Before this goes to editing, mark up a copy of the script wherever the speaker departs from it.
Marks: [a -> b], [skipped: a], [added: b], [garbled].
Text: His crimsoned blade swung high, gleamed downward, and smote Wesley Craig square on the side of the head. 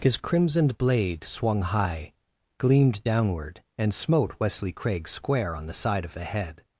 His crimsoned blade swung high, gleamed downward, and smote Wesley Craig square on the side of the head.